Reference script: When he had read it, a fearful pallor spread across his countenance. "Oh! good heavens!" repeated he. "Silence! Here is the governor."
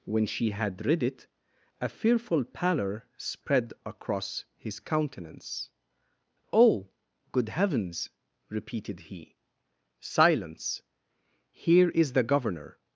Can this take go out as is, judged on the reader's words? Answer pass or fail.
fail